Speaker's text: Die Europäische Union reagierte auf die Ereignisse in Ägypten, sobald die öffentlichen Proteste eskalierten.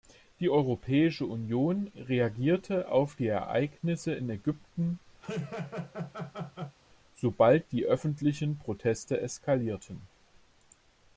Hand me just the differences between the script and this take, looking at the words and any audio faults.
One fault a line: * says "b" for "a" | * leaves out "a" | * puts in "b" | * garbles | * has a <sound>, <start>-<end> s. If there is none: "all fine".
* has a laugh, 5.2-6.8 s